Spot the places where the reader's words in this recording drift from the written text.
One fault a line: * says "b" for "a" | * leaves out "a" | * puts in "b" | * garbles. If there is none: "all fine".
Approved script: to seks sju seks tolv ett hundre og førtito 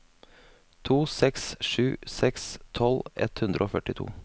all fine